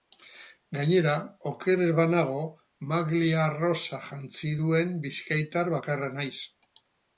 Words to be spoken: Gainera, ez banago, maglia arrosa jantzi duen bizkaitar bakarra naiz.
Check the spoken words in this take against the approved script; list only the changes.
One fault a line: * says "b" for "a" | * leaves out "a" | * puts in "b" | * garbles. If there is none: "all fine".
* puts in "oker"